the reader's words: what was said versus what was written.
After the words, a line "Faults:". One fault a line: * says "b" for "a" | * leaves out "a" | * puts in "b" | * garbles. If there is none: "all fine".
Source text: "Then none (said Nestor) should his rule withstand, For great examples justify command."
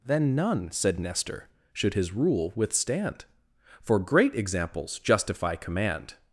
"Then none (said Nestor) should his rule withstand, For great examples justify command."
Faults:
all fine